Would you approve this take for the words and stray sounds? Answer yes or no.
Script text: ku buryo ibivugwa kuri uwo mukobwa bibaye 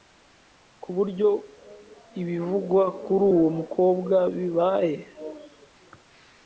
yes